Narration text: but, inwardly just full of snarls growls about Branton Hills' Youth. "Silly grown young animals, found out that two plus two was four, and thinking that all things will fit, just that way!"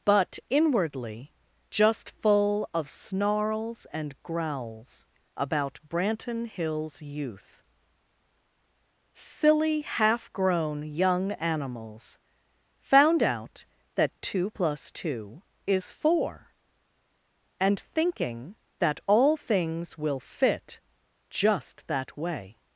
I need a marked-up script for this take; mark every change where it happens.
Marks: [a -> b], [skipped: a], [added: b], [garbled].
but, inwardly just full of snarls [added: and] growls about Branton Hills' Youth. "Silly [added: half] grown young animals, found out that two plus two [was -> is] four, and thinking that all things will fit, just that way!"